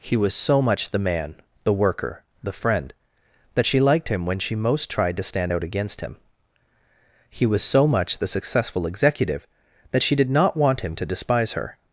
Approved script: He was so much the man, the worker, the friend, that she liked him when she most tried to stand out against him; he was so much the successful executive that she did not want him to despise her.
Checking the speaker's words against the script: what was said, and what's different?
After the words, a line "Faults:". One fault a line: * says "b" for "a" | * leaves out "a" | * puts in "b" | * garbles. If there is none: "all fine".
He was so much the man, the worker, the friend, that she liked him when she most tried to stand out against him; he was so much the successful executive that she did not want him to despise her.
Faults:
all fine